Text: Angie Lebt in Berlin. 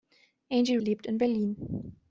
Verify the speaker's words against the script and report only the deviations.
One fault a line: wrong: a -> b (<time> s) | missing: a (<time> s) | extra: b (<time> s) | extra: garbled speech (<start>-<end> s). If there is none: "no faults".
no faults